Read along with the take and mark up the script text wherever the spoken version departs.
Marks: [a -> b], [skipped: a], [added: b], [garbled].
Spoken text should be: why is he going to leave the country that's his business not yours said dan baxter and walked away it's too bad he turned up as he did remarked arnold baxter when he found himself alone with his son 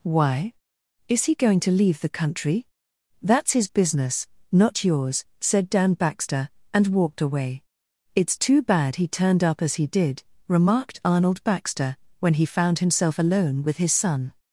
why is he going to leave the country that's his business not yours said dan baxter and walked away it's too bad he turned up as he did remarked arnold baxter when he found himself alone with his son